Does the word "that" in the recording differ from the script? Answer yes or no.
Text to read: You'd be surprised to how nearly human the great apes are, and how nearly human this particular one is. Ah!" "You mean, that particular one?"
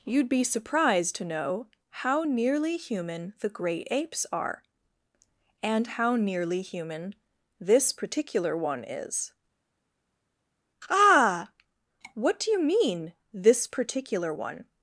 yes